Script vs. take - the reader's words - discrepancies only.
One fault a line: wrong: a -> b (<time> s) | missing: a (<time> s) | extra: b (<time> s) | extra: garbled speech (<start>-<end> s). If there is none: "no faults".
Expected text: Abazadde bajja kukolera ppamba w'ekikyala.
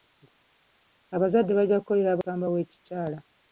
no faults